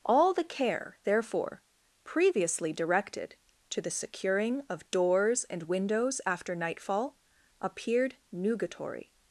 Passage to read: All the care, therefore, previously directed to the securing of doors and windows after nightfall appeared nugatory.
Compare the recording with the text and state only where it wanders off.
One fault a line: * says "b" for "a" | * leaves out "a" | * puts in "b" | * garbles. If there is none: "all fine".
all fine